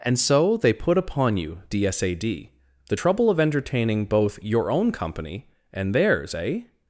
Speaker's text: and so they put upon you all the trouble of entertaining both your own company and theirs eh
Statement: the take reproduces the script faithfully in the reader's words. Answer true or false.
false